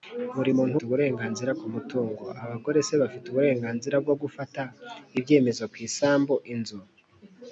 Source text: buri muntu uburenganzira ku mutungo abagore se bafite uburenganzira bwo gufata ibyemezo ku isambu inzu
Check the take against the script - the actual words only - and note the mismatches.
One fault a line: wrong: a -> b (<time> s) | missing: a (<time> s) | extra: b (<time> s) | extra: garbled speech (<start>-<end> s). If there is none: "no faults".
no faults